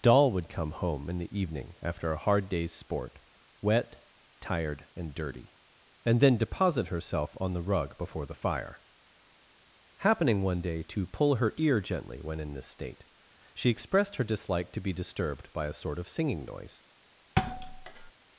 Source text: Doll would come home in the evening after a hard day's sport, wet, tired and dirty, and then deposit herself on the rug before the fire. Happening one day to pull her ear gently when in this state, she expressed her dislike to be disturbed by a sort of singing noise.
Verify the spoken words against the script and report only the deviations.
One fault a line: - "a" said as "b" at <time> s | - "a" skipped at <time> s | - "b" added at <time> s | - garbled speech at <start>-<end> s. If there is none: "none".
none